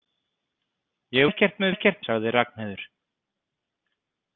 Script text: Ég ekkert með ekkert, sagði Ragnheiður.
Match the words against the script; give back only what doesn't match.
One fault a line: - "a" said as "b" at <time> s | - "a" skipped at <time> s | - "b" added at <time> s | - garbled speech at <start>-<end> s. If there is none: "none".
none